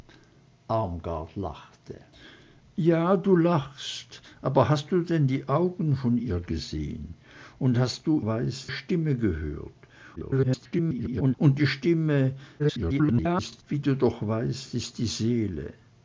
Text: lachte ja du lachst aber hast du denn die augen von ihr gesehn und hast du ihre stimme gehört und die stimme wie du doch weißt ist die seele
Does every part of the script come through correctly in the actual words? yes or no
no